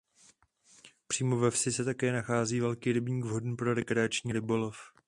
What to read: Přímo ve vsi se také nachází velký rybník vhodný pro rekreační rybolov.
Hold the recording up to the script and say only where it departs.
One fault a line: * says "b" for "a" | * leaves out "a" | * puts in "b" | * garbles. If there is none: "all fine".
all fine